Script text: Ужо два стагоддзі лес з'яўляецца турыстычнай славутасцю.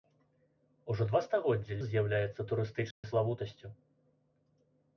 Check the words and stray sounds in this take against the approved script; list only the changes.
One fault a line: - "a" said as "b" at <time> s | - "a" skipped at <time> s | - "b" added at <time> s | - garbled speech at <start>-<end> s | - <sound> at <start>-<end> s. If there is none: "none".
- "лес" skipped at 1.8 s
- dropout at 2.9-3.0 s